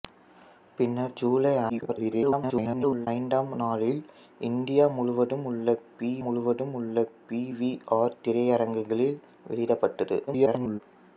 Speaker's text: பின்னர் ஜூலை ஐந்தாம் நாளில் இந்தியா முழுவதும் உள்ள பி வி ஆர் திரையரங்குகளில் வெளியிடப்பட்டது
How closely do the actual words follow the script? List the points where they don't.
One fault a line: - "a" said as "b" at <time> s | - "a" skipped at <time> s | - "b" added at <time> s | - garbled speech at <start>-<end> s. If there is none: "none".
- garbled speech at 1.7-3.1 s
- "முழுவதும் உள்ள பி" added at 6.2 s
- garbled speech at 10.3-10.8 s